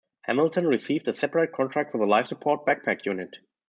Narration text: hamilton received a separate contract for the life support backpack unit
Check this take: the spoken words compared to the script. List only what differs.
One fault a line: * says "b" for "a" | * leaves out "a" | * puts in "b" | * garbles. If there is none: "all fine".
all fine